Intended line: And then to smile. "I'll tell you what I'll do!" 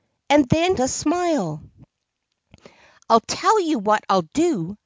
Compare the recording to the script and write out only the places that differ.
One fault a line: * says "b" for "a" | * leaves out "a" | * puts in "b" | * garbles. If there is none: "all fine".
all fine